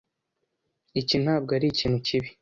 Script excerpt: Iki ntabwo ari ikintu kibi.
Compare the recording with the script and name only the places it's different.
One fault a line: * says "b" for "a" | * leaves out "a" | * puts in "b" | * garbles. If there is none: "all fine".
all fine